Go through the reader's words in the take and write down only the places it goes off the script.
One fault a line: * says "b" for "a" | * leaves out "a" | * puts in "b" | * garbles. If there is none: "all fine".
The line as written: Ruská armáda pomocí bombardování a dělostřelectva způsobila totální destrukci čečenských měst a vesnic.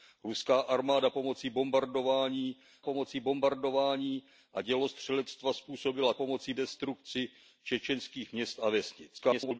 * puts in "pomocí bombardování"
* says "pomocí" for "totální"
* garbles